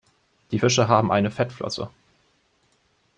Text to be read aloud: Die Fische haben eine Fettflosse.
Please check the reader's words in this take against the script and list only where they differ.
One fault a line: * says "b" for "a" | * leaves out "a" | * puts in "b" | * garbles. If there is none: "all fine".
all fine